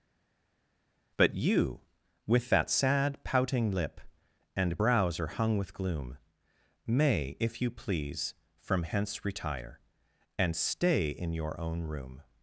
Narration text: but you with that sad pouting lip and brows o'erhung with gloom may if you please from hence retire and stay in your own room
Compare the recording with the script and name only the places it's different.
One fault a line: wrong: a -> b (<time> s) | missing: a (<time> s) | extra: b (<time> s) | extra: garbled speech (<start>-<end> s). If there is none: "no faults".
no faults